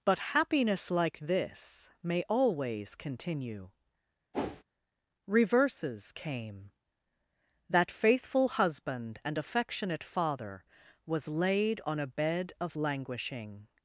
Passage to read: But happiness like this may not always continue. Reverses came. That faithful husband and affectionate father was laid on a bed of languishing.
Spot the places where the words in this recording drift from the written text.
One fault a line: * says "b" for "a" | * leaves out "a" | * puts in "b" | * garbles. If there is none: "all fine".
* leaves out "not"